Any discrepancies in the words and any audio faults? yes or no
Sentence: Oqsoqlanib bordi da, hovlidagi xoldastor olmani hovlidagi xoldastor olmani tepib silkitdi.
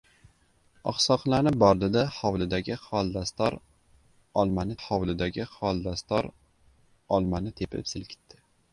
no